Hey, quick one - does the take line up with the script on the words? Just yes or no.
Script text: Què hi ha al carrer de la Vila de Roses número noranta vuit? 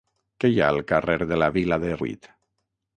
no